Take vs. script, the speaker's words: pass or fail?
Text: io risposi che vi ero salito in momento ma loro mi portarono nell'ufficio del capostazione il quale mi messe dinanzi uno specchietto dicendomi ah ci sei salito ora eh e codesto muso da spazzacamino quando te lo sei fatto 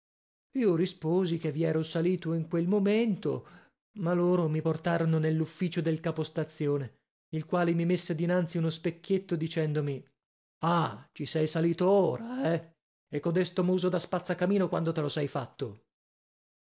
fail